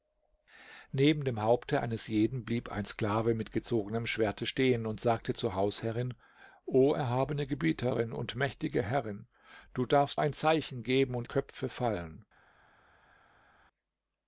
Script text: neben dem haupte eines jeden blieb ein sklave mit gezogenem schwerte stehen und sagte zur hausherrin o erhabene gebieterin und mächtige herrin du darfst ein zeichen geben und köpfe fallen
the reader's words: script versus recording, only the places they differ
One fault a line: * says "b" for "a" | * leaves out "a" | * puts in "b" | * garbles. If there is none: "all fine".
all fine